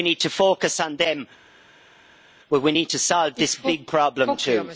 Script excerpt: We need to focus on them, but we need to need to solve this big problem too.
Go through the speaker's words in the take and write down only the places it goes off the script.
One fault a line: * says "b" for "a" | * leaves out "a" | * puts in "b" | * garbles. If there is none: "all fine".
* leaves out "need to"